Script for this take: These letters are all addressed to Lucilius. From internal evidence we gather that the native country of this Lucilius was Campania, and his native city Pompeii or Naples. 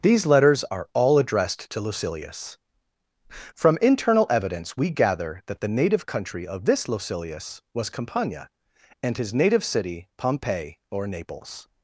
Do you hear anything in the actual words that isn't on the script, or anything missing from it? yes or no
no